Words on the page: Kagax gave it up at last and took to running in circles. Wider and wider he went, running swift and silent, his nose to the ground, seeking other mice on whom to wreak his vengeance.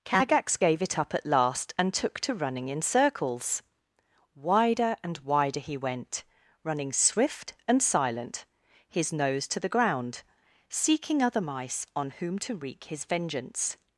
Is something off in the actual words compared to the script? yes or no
no